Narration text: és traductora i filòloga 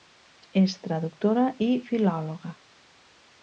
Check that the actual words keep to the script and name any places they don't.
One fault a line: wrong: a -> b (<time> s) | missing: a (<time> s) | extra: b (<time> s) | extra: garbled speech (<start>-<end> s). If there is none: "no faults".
no faults